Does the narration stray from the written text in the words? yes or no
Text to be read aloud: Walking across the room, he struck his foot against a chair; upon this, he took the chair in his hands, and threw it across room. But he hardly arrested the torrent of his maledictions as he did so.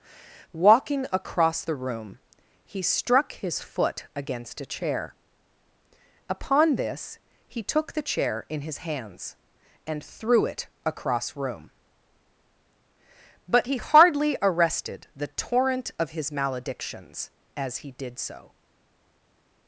no